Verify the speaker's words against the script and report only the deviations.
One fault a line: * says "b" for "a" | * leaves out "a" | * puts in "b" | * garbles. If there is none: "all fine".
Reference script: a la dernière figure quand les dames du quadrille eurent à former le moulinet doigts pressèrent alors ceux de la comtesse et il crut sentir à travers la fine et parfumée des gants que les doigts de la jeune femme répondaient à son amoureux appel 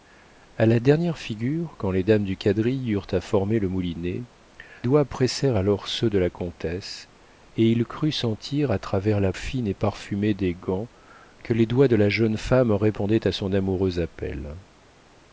all fine